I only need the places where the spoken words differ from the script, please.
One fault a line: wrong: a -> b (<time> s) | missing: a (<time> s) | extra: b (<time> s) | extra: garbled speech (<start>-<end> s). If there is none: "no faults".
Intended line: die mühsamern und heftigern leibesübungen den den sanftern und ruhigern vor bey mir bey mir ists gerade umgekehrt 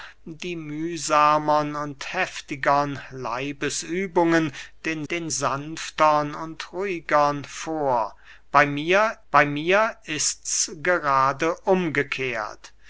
no faults